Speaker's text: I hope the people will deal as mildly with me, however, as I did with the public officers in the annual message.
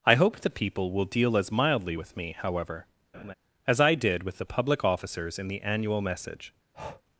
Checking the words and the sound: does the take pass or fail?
fail